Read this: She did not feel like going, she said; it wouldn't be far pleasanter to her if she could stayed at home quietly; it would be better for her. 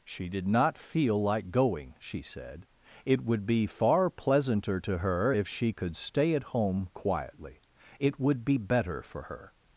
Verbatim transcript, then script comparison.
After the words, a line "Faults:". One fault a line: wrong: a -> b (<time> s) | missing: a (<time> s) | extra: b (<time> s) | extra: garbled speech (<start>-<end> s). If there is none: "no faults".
She did not feel like going, she said; it would be far pleasanter to her if she could stay at home quietly; it would be better for her.
Faults:
wrong: wouldn't -> would (3.2 s)
wrong: stayed -> stay (6.0 s)